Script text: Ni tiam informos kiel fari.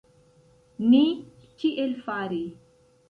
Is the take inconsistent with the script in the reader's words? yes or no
yes